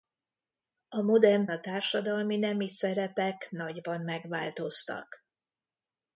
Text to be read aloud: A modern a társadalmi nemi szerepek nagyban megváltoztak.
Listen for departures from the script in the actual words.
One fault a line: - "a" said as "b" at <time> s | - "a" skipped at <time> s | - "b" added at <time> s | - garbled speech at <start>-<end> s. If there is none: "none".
none